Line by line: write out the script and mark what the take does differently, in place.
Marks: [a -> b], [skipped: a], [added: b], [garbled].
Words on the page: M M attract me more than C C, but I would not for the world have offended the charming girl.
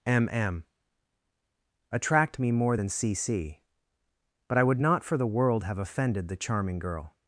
M M attract me more than C C, but I would not for the world have offended the charming girl.